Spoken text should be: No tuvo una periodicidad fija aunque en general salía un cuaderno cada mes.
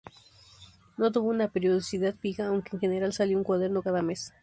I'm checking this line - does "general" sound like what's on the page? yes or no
yes